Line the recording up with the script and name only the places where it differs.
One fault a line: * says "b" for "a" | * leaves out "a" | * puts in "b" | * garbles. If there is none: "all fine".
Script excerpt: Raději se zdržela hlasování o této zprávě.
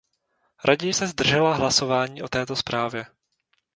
all fine